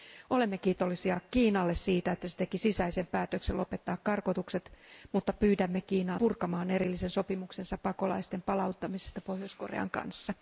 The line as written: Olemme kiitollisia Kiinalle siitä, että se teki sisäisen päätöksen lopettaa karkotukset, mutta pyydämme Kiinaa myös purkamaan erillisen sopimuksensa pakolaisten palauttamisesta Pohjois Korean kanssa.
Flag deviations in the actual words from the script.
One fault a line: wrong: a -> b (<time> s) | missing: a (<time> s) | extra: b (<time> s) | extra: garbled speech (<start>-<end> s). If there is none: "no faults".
missing: myös (6.2 s)